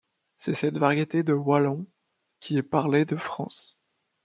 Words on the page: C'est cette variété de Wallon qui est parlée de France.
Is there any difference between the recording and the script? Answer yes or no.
no